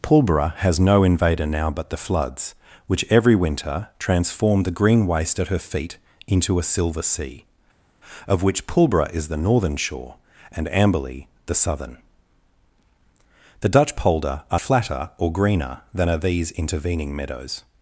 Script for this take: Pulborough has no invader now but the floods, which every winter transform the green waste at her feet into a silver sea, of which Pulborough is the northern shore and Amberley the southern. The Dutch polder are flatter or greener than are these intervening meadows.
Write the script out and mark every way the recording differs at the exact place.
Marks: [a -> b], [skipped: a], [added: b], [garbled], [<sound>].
Pulborough has no invader now but the floods, which every winter transform the green waste at her feet into a silver sea, of which Pulborough is the northern shore and Amberley the southern. The Dutch polder are flatter or greener than are these intervening meadows.